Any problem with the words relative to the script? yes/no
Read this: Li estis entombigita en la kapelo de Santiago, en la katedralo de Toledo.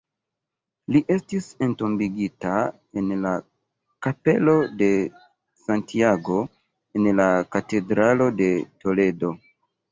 no